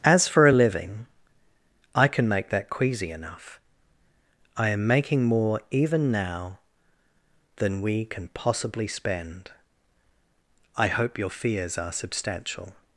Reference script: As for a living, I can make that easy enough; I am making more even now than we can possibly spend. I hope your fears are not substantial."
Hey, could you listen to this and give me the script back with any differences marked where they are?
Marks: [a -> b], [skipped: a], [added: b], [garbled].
As for a living, I can make that [easy -> queasy] enough; I am making more even now than we can possibly spend. I hope your fears are [skipped: not] substantial."